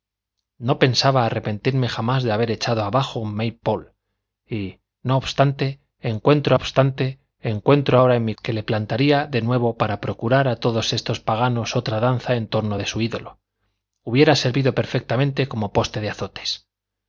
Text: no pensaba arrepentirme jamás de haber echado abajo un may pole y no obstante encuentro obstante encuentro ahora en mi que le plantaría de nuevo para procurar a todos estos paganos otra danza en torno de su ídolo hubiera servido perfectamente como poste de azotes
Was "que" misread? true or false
false